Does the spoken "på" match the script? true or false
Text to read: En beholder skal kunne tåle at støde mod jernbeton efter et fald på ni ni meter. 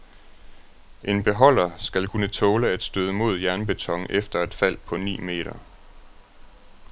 true